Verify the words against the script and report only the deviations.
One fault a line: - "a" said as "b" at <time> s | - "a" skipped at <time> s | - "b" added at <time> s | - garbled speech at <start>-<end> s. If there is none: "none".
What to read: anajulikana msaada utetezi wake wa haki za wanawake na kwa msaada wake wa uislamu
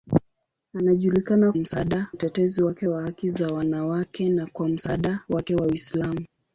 none